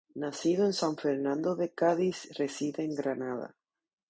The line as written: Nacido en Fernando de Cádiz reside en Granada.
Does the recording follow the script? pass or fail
fail